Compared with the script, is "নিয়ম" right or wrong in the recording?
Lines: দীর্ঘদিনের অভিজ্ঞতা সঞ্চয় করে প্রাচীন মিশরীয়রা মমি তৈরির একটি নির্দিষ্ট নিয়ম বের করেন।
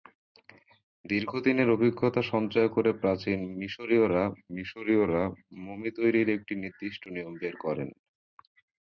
right